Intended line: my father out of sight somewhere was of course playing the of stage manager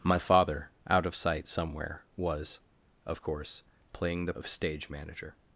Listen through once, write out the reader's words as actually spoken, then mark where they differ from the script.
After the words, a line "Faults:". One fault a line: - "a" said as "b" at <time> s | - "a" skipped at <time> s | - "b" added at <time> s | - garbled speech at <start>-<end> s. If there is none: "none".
my father out of sight somewhere was of course playing the of stage manager
Faults:
none